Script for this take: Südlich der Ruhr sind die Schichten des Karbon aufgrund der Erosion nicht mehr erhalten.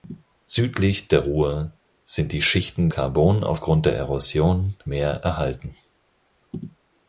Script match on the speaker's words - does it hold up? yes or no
no